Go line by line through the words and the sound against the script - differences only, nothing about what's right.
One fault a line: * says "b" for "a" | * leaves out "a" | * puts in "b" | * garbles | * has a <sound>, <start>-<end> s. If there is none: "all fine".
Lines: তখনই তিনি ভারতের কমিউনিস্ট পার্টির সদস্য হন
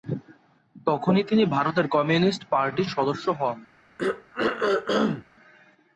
* has a throat clearing, 4.0-5.3 s